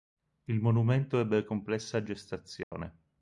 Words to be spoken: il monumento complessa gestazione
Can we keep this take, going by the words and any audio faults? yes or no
no